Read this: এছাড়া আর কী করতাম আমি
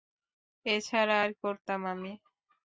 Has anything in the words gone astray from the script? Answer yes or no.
yes